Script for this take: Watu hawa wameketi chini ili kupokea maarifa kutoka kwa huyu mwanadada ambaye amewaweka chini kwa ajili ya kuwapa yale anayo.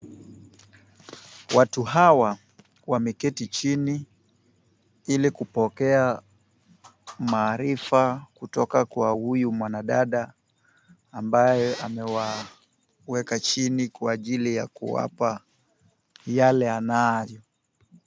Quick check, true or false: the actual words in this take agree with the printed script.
true